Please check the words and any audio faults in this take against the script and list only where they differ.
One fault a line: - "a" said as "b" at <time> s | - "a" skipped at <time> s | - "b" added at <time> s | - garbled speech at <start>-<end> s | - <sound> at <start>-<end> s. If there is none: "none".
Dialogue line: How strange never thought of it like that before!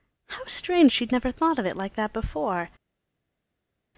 - "she'd" added at 0.9 s